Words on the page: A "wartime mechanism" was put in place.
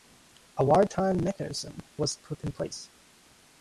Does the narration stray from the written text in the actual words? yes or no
no